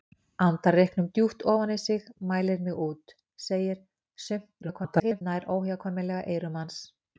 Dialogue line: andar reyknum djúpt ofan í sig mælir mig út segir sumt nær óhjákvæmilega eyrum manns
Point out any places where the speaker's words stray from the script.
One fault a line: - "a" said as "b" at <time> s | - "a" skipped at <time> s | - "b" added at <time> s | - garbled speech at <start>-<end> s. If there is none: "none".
- garbled speech at 4.6-5.2 s